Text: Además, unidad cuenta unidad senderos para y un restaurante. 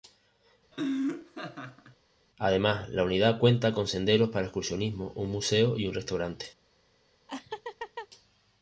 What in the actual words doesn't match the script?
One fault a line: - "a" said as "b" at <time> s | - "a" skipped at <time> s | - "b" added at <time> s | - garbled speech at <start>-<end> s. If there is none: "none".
- "la" added at 2.9 s
- "unidad" said as "con" at 3.7 s
- "excursionismo un museo" added at 4.5 s